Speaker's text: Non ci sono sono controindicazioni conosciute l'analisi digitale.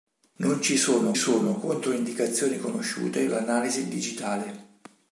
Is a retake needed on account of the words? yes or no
no